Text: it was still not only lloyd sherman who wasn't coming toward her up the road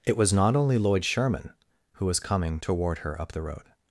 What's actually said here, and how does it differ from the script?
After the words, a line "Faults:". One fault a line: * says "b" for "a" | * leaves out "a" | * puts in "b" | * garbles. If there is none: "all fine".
it was not only lloyd sherman who was coming toward her up the road
Faults:
* leaves out "still"
* says "was" for "wasn't"